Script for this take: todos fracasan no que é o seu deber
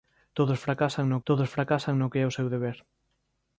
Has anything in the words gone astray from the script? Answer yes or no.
yes